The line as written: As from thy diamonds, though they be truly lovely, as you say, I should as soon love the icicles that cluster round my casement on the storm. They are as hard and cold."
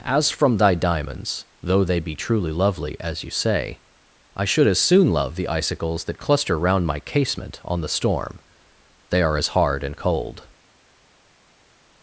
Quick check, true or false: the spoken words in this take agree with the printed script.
true